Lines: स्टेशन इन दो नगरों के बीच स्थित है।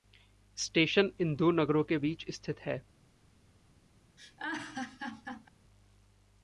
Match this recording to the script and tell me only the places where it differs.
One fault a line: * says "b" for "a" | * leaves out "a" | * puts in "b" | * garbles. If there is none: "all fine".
all fine